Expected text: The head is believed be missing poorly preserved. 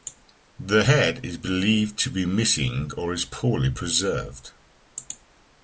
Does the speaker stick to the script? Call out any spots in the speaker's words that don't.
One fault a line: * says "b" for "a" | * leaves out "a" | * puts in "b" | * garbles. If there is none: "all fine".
* puts in "to"
* puts in "or is"